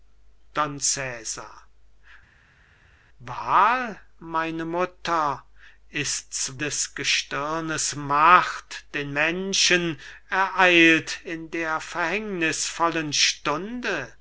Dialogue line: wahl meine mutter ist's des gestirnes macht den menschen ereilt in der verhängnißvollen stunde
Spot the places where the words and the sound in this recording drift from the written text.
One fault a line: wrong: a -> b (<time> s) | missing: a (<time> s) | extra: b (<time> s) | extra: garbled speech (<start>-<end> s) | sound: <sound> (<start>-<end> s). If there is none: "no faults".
no faults